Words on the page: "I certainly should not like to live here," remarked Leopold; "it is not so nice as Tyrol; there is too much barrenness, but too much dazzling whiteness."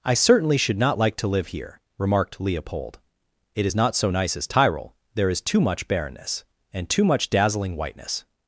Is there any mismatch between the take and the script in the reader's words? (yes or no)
yes